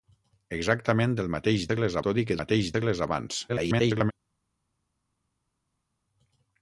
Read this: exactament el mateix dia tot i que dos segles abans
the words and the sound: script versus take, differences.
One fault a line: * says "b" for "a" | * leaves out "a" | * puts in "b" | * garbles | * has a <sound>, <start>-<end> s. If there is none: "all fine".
* says "segles" for "dia"
* says "mateix" for "dos"
* garbles